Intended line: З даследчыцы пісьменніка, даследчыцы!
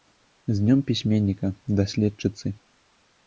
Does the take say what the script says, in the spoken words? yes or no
no